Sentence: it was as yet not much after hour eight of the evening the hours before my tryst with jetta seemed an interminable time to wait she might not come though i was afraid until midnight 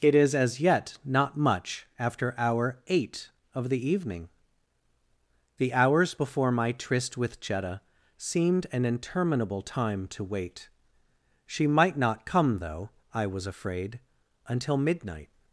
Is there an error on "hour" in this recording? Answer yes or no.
no